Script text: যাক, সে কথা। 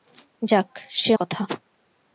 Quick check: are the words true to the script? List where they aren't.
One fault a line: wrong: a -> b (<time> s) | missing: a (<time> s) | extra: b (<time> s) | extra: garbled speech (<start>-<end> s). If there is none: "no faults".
no faults